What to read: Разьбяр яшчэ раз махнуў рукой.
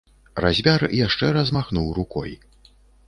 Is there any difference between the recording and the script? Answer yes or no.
no